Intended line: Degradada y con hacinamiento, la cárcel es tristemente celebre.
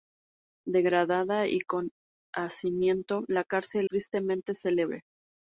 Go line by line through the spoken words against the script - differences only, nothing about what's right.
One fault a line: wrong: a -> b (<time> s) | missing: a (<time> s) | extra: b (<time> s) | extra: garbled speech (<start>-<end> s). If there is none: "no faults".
missing: es (3.9 s)